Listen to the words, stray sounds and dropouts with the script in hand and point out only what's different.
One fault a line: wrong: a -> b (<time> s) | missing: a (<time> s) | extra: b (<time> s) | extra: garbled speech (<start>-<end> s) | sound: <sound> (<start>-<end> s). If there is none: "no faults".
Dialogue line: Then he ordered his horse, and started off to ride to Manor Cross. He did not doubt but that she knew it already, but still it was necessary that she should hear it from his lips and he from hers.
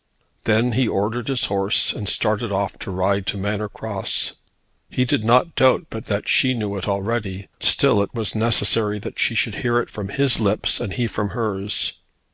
missing: but (7.5 s)